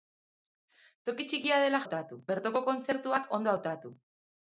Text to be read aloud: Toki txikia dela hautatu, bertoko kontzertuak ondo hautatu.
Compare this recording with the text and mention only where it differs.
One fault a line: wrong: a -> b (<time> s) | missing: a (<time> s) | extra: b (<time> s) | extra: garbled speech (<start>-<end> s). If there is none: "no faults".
no faults